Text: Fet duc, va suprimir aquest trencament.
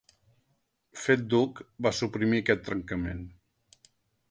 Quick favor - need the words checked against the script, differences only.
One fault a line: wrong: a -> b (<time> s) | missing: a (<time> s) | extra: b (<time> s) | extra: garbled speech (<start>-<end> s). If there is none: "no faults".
no faults